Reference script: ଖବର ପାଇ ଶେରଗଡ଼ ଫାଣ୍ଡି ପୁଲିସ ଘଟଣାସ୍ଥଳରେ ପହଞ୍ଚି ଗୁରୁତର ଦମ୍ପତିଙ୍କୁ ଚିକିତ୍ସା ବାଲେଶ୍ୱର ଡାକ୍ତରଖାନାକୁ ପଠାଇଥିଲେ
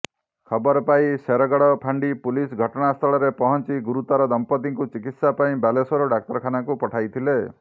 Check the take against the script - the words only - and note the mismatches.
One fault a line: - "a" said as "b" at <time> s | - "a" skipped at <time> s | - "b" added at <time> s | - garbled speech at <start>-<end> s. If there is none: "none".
- "ପାଇଁ" added at 5.4 s